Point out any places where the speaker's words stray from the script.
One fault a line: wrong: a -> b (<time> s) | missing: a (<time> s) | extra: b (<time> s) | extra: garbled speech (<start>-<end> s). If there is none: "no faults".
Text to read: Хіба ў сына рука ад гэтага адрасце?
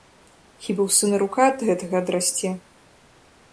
no faults